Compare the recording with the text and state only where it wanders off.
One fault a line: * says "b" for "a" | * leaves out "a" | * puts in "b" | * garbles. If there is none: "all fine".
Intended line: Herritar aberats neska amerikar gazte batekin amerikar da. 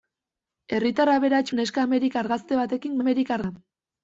all fine